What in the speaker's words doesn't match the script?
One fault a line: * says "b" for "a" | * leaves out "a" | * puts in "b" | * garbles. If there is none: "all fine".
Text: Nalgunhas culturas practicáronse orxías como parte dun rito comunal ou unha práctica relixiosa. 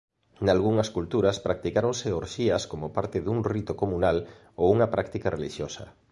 all fine